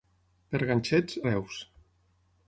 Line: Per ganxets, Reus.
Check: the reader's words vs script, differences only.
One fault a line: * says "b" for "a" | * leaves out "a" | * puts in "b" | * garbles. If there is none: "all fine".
all fine